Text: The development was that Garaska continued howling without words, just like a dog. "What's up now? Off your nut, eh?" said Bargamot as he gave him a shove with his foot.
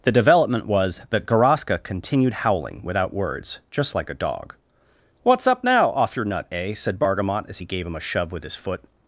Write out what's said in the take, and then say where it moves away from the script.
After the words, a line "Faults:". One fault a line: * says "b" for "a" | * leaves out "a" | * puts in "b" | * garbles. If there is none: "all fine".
The development was that Garaska continued howling without words, just like a dog. "What's up now? Off your nut, eh?" said Bargamot as he gave him a shove with his foot.
Faults:
all fine